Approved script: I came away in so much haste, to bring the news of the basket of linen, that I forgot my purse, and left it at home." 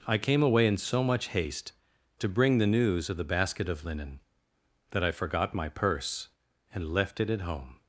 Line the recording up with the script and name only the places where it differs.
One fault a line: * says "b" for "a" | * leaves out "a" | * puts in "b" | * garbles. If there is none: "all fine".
all fine